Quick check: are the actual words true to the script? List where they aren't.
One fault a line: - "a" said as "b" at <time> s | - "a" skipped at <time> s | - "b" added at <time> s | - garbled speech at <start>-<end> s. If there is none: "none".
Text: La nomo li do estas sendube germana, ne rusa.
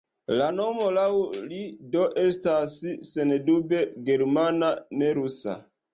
- "laŭ" added at 1.0 s